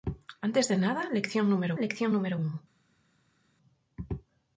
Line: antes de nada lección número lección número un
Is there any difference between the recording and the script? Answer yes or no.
no